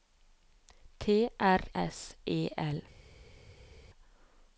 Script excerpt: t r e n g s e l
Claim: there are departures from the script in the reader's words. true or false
true